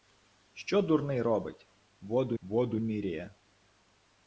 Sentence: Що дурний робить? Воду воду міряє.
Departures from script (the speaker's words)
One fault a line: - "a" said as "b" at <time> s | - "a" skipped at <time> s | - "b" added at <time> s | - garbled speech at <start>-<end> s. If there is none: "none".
none